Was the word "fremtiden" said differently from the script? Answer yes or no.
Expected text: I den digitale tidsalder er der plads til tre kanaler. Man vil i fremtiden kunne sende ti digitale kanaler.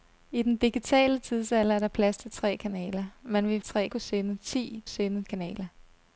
yes